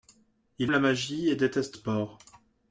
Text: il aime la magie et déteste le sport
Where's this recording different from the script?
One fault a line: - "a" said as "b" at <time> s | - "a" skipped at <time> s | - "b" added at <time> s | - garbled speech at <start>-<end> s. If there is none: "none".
- "aime" skipped at 0.7 s
- "le" skipped at 1.8 s